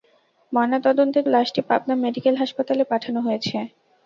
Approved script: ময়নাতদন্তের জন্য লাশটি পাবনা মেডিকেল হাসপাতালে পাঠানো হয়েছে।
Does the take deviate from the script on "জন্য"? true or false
true